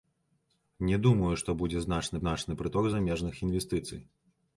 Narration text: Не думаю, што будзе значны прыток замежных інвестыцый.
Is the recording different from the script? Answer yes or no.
yes